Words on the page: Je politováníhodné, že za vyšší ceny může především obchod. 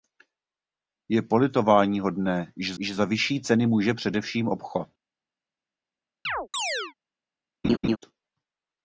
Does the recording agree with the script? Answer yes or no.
no